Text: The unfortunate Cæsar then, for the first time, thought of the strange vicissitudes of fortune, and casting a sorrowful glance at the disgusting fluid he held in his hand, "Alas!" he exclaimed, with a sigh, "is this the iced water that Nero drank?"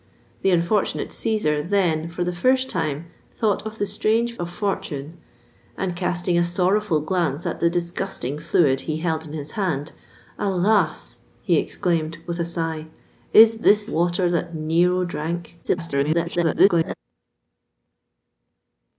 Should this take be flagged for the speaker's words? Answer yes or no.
yes